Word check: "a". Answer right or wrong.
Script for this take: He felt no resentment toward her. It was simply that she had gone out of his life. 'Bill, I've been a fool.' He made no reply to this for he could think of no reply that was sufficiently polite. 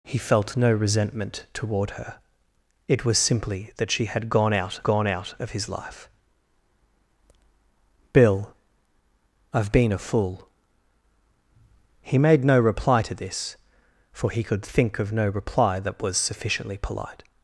right